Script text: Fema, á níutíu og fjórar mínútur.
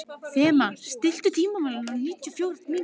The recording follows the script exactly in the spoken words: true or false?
false